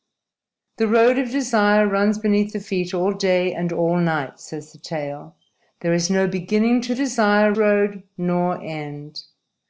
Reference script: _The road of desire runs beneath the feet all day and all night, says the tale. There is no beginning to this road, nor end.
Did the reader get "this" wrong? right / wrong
wrong